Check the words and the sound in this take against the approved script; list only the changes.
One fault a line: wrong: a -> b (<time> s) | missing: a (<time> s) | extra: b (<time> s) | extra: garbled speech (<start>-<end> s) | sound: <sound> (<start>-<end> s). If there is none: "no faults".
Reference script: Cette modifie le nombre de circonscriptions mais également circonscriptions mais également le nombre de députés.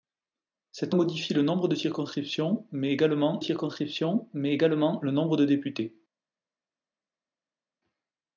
no faults